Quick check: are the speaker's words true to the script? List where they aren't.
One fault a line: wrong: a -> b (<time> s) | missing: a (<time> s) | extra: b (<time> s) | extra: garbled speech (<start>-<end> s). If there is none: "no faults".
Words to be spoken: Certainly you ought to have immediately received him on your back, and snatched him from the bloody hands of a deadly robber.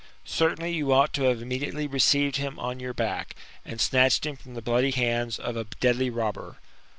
no faults